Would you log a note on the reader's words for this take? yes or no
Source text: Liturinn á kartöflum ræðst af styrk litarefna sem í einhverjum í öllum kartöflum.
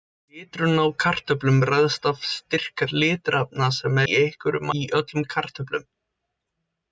no